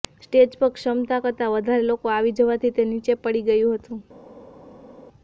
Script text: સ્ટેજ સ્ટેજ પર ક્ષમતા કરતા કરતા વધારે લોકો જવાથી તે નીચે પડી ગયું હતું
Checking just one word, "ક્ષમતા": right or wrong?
right